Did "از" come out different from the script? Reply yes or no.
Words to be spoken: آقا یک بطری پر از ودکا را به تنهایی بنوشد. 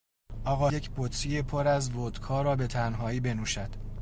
no